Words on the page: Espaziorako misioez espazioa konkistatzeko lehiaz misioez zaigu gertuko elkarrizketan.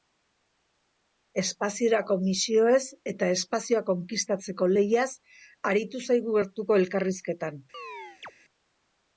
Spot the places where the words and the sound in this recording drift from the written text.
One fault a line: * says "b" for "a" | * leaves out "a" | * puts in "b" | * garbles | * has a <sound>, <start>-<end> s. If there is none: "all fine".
* puts in "eta"
* says "aritu" for "misioez"
* has a chirp, 7.7-8.3 s